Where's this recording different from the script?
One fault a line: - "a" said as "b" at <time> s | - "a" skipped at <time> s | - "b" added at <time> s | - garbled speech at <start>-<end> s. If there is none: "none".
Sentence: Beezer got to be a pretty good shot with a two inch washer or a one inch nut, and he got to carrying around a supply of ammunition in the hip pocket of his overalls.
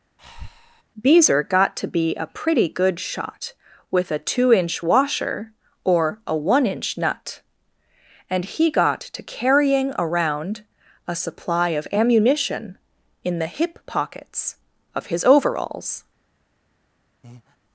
- "pocket" said as "pockets" at 13.9 s